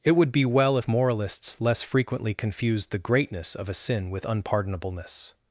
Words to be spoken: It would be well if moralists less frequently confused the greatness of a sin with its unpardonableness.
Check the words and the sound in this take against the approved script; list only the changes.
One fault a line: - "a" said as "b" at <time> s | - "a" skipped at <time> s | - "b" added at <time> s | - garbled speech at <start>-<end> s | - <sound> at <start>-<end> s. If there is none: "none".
- "its" skipped at 4.3 s